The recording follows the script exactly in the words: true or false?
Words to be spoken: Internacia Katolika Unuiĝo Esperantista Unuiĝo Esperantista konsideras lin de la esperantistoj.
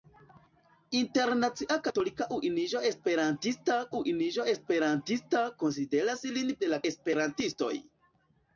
true